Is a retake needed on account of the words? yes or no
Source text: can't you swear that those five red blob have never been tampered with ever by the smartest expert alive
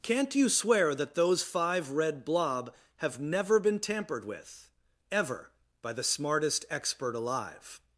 no